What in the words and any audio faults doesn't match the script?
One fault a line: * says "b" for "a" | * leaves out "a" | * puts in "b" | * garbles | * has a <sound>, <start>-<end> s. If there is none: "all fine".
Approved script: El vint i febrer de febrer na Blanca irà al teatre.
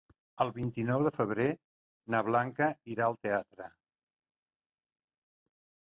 * says "nou" for "febrer"